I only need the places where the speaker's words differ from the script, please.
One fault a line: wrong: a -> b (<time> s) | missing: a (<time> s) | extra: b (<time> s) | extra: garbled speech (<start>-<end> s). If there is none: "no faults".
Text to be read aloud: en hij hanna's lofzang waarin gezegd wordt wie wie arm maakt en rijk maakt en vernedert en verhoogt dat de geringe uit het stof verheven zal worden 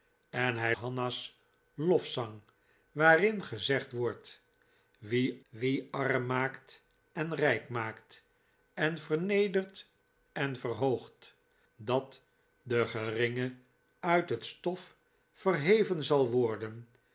no faults